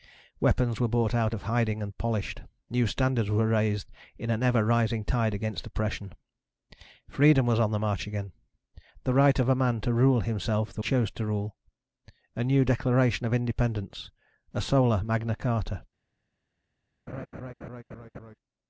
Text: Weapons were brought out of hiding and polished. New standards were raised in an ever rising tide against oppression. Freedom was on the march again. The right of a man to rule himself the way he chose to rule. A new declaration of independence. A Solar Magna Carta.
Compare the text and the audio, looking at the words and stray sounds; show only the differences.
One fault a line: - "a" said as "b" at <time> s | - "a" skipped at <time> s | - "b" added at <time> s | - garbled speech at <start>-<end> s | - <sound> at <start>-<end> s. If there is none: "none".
- "way he" skipped at 10.8 s
- laugh at 17.1-18.4 s